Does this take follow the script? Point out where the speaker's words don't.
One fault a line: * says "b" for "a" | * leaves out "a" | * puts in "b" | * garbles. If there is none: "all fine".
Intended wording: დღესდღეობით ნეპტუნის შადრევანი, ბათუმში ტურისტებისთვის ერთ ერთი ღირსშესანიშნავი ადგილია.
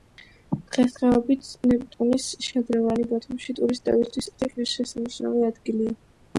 * leaves out "ერთ"